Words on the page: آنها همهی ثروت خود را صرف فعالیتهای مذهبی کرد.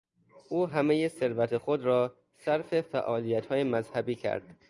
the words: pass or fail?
fail